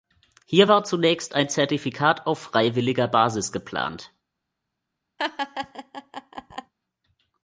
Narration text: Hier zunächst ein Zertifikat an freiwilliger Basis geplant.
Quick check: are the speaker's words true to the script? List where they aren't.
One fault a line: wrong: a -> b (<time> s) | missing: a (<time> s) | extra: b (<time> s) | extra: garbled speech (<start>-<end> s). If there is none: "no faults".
extra: war (0.7 s)
wrong: an -> auf (2.3 s)